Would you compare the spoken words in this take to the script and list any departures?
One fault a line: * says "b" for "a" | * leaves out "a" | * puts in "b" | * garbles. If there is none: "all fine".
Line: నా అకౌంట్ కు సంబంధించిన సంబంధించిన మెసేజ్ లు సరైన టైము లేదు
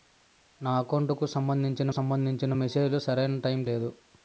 all fine